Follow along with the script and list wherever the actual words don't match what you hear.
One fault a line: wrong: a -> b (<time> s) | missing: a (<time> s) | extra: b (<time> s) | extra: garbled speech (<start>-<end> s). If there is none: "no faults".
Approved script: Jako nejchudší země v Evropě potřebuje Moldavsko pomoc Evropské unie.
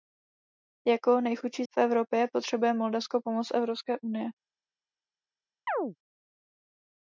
missing: země (1.6 s)